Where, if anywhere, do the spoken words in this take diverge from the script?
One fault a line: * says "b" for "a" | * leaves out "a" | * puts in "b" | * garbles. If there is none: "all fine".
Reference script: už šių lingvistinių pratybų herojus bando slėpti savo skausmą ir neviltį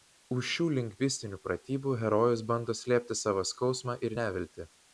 all fine